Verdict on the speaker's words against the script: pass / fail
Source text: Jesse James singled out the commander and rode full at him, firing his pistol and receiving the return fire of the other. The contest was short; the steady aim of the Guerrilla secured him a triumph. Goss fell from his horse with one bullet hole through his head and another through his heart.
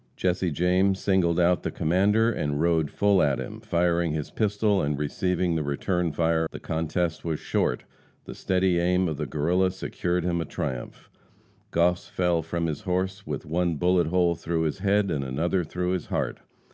fail